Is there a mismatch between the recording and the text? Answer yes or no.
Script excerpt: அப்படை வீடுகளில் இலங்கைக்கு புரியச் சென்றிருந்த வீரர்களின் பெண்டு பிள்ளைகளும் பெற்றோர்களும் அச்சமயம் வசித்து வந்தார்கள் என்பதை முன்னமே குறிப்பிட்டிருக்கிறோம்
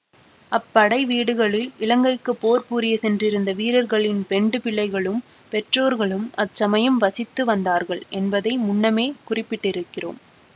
yes